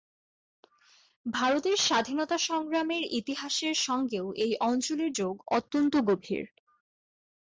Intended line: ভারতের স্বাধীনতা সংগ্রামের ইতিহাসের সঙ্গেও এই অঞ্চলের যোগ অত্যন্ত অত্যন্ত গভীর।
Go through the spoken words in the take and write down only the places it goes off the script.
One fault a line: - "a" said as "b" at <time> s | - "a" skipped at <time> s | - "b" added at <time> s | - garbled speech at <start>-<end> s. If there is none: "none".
- "অত্যন্ত" skipped at 5.9 s